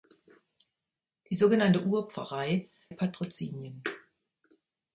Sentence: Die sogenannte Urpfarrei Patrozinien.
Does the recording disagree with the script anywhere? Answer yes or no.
no